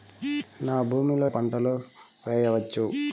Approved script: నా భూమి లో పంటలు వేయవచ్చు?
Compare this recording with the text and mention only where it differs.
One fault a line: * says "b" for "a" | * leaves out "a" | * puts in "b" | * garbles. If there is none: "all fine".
all fine